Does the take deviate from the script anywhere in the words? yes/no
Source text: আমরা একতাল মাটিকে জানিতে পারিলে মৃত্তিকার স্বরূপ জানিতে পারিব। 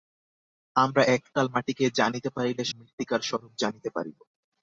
no